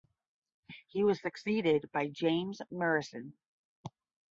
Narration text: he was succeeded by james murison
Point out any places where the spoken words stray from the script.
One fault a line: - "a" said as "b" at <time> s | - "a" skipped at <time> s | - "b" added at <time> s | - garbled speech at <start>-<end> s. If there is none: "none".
none